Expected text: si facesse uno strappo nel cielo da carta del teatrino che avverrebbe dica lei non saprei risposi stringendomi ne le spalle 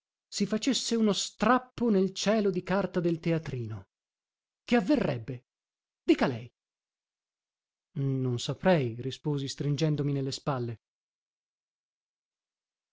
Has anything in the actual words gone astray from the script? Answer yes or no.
yes